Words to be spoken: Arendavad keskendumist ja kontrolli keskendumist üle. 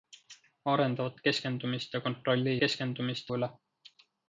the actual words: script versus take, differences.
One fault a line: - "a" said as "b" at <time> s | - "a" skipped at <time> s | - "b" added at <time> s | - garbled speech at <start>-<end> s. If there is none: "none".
none